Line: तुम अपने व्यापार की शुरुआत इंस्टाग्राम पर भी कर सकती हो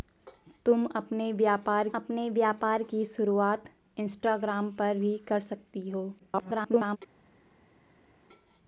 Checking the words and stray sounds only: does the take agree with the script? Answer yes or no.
no